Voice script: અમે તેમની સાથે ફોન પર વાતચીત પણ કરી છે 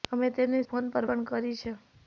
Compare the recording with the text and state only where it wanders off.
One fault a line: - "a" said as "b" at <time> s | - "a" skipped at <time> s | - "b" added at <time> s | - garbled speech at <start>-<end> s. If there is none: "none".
- "સાથે" skipped at 0.6 s
- "વાતચીત" skipped at 1.1 s